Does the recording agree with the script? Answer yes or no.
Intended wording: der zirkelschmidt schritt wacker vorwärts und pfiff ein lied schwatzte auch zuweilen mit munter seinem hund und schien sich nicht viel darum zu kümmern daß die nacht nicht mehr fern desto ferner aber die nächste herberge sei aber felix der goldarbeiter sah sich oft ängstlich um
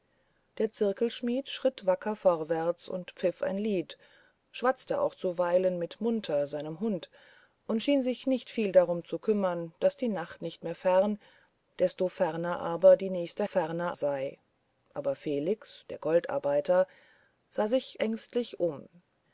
no